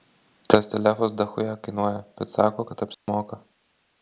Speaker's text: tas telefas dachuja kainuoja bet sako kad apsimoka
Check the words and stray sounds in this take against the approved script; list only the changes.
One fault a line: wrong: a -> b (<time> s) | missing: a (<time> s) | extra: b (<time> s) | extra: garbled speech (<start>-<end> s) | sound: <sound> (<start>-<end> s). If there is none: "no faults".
sound: dropout (2.9-3.1 s)